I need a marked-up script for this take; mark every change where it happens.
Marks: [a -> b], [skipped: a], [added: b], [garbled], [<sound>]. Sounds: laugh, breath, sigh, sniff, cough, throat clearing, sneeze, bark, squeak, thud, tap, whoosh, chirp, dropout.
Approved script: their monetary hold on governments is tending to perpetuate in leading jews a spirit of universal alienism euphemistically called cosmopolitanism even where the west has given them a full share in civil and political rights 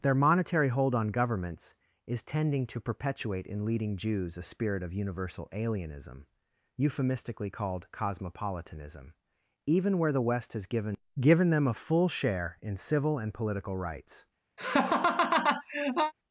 their monetary hold on governments is tending to perpetuate in leading jews a spirit of universal alienism euphemistically called cosmopolitanism even where the west has given [added: given] them a full share in civil and political rights [laugh]